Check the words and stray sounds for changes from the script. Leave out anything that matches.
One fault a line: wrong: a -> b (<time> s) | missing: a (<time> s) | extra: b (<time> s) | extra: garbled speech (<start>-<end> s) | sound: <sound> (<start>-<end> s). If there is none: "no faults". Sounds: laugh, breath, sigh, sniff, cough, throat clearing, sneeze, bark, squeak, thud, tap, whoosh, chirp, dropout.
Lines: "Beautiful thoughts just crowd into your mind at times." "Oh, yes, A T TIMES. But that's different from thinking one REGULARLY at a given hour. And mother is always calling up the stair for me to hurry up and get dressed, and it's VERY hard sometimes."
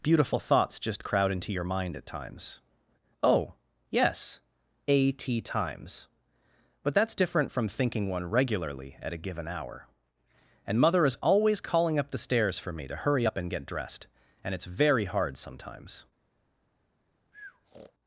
wrong: stair -> stairs (12.2 s)
sound: breath (17.3-17.9 s)